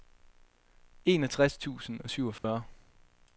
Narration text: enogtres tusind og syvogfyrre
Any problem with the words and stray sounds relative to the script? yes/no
yes